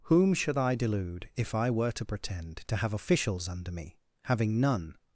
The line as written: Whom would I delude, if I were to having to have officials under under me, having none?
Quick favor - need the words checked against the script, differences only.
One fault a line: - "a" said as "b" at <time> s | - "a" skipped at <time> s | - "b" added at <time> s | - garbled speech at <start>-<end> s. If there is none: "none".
- "would" said as "should" at 0.3 s
- "having" said as "pretend" at 2.0 s
- "under" skipped at 3.7 s